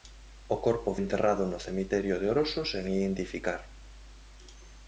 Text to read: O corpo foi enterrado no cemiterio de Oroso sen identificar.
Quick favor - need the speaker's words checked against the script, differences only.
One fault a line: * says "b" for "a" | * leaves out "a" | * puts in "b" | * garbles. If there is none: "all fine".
* leaves out "foi"